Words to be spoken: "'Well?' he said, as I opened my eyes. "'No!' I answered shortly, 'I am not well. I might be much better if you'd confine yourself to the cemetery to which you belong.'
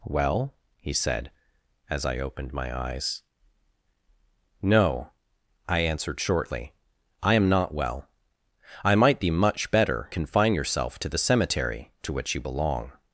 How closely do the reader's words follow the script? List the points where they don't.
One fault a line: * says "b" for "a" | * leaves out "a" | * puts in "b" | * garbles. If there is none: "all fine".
* leaves out "if you'd"